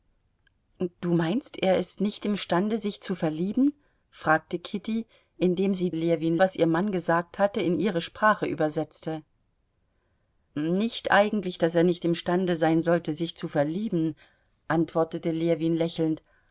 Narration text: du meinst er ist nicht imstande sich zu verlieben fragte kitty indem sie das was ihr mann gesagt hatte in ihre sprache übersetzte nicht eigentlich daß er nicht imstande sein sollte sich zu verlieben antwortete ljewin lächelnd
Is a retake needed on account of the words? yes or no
yes